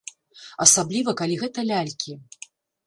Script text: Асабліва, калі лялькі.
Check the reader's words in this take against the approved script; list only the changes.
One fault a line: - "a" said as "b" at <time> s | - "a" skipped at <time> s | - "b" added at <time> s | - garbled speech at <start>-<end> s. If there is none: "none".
- "гэта" added at 1.4 s